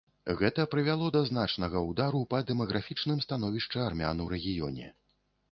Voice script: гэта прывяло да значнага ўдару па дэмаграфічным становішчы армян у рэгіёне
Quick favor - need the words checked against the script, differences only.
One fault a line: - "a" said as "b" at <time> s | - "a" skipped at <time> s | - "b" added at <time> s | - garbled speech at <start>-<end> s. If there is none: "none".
none